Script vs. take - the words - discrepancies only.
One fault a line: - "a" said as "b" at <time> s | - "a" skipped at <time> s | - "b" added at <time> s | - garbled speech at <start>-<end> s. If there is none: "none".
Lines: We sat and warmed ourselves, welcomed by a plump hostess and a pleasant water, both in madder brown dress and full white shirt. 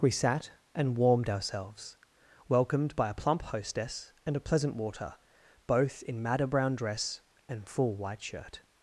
none